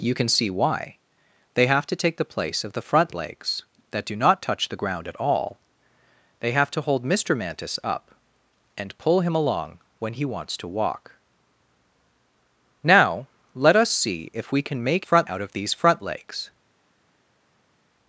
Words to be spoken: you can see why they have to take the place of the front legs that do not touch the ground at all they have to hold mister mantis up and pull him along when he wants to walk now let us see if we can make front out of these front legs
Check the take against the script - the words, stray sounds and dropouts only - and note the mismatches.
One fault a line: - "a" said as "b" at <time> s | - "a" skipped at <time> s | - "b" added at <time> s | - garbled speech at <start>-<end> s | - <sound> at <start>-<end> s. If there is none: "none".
none